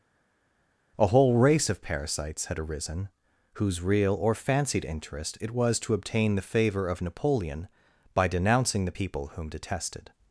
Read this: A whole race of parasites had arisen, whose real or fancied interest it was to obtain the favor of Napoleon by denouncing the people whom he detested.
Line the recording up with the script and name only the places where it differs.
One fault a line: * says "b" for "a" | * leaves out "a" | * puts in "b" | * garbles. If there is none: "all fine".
* leaves out "he"